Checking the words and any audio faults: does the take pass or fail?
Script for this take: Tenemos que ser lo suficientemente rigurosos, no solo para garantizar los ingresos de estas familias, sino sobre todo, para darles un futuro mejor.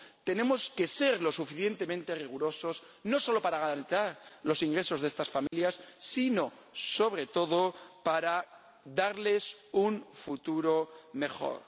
fail